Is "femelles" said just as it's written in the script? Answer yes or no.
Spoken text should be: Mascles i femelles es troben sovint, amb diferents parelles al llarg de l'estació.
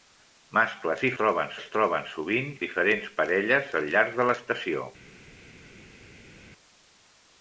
no